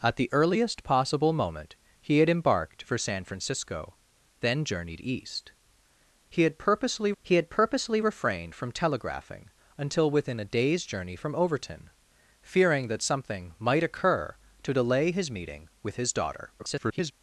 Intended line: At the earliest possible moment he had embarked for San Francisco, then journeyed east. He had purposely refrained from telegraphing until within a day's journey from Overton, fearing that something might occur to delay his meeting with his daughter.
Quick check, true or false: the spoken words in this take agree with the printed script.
false